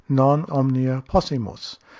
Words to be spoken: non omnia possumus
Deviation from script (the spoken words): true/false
false